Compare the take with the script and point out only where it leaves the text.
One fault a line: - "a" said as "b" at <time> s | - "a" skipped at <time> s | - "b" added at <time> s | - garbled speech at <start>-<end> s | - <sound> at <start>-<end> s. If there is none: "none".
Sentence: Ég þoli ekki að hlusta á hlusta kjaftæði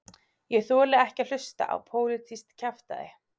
- "hlusta" said as "pólitískt" at 1.9 s